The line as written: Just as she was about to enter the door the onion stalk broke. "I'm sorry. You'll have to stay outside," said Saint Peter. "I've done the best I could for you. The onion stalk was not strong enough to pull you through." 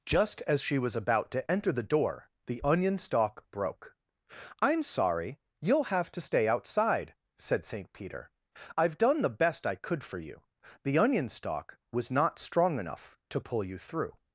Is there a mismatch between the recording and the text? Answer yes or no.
no